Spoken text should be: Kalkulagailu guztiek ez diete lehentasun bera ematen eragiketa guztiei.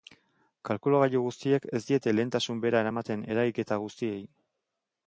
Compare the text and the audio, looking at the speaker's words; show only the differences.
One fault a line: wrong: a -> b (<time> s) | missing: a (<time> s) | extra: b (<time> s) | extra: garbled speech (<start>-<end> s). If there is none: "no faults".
no faults